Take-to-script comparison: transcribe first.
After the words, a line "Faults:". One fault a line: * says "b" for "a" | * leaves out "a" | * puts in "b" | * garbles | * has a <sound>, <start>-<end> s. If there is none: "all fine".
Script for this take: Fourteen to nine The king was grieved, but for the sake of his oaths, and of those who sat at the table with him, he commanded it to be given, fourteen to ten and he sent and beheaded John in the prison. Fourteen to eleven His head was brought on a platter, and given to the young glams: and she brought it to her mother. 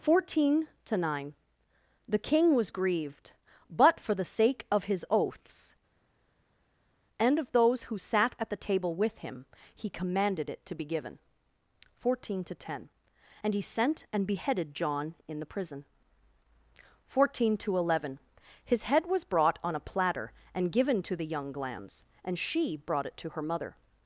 Fourteen to nine The king was grieved, but for the sake of his oaths, and of those who sat at the table with him, he commanded it to be given, fourteen to ten and he sent and beheaded John in the prison. Fourteen to eleven His head was brought on a platter, and given to the young glams: and she brought it to her mother.
Faults:
all fine